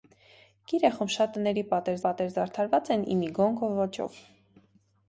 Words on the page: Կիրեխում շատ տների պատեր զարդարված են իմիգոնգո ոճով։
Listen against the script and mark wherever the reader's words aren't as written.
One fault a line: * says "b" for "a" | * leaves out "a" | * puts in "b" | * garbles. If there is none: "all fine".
* puts in "պատեր"